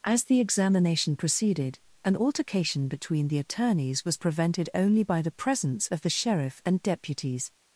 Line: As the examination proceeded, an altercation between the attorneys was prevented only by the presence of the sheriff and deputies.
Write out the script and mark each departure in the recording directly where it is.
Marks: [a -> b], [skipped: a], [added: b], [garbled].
As the examination proceeded, an altercation between the attorneys was prevented only by the presence of the sheriff and deputies.